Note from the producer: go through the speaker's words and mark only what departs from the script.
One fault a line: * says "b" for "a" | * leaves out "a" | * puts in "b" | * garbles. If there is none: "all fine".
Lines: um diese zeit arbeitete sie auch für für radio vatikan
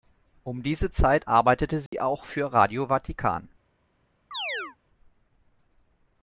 * leaves out "für"